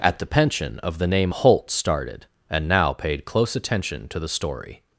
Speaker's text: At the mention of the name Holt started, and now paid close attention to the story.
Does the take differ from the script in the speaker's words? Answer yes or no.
yes